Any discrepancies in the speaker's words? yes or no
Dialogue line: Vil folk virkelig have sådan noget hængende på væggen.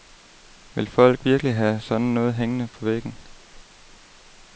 no